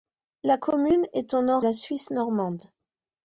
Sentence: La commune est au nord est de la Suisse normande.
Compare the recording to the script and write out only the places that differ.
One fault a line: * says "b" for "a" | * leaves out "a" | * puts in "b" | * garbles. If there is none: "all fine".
* leaves out "est de"